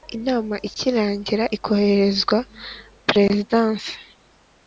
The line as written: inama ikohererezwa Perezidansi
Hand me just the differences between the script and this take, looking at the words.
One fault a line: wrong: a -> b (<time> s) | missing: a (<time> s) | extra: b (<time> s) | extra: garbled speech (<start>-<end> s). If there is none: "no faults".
extra: ikirangira (0.7 s)